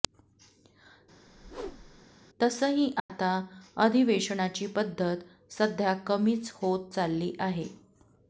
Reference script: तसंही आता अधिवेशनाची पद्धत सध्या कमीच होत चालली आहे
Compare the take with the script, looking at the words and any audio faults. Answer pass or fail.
fail